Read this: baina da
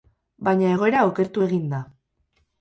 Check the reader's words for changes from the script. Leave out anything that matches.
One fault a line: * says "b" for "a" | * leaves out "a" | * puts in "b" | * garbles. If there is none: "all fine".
* puts in "egoera okertu egin"